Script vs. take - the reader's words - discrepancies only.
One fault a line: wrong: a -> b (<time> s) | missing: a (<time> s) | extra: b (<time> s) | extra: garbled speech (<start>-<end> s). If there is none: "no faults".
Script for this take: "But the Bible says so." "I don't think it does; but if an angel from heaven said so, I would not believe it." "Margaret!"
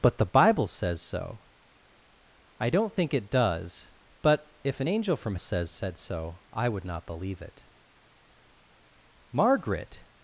wrong: heaven -> says (5.4 s)